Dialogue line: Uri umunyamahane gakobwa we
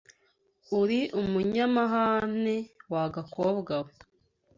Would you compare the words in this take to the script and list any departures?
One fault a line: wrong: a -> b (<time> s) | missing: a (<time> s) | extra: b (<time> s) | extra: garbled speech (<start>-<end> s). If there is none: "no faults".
extra: wa (2.9 s)